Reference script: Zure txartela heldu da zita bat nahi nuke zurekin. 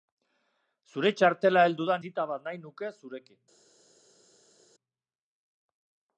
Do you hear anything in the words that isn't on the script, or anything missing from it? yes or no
no